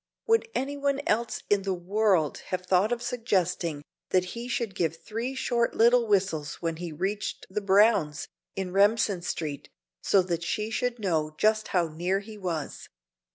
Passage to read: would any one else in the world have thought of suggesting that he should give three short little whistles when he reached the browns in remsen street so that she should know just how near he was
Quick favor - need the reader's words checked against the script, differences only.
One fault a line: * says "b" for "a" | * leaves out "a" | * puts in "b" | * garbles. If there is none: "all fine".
all fine